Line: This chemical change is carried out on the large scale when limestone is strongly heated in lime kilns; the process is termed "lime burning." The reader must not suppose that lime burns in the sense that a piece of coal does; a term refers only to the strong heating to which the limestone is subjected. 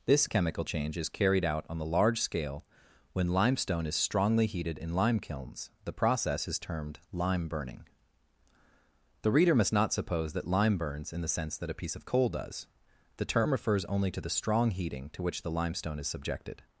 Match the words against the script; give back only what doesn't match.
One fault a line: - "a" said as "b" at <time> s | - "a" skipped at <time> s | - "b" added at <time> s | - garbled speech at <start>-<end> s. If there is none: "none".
- "a" said as "the" at 13.2 s